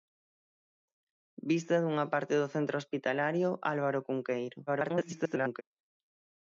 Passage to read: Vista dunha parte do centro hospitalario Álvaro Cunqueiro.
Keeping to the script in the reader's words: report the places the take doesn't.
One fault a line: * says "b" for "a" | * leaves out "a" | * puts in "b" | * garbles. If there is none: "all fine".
* garbles